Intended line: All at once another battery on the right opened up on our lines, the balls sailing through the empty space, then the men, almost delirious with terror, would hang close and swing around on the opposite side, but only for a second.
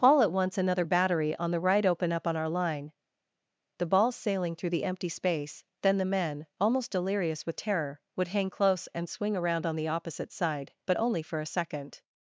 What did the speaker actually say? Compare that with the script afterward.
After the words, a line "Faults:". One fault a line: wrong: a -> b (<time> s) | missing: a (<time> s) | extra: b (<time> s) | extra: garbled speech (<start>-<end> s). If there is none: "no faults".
All at once another battery on the right open up on our line, the balls sailing through the empty space, then the men, almost delirious with terror, would hang close and swing around on the opposite side, but only for a second.
Faults:
wrong: opened -> open (1.9 s)
wrong: lines -> line (2.5 s)